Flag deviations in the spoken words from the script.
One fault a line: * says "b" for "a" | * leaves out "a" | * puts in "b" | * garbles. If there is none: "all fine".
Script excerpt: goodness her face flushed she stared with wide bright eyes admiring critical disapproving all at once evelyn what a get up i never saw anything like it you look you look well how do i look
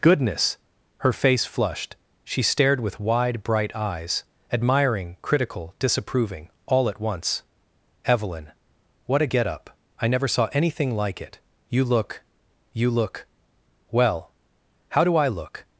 all fine